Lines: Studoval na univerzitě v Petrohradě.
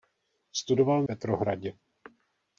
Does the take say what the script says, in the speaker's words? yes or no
no